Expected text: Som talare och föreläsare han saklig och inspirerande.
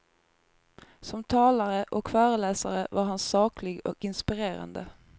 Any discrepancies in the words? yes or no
yes